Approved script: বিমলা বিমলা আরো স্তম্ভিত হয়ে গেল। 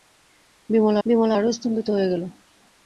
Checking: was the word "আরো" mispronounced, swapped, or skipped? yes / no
no